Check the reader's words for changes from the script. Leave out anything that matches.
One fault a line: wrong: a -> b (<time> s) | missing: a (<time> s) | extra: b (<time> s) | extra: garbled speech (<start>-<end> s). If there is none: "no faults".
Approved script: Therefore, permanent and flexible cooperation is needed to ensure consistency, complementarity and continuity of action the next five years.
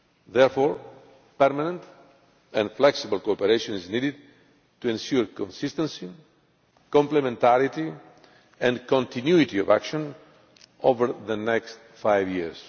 extra: over (10.8 s)